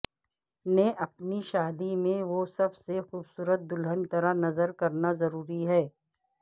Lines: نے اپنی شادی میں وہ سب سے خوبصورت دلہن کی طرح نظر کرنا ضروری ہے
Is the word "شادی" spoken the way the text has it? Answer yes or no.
yes